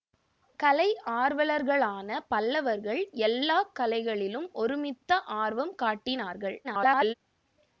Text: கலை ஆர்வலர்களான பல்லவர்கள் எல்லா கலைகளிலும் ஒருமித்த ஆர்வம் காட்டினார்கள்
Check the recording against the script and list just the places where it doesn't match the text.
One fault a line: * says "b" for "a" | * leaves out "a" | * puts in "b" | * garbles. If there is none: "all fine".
* garbles